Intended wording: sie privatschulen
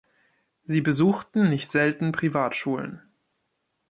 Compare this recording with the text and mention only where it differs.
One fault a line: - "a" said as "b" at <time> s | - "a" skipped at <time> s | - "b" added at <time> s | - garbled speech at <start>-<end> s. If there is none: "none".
- "besuchten nicht selten" added at 0.8 s